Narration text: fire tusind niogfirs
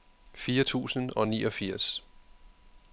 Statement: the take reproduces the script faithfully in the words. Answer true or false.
false